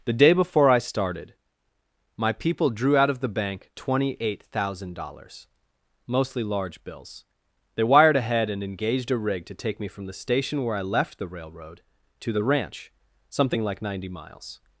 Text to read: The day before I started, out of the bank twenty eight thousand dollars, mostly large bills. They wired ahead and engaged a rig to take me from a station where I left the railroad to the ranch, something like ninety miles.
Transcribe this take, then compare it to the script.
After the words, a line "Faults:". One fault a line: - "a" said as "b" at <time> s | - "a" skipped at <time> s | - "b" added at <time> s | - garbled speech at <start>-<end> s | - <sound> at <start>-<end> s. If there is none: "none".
The day before I started, my people drew out of the bank twenty eight thousand dollars, mostly large bills. They wired ahead and engaged a rig to take me from the station where I left the railroad to the ranch, something like ninety miles.
Faults:
- "my people drew" added at 2.2 s
- "a" said as "the" at 10.1 s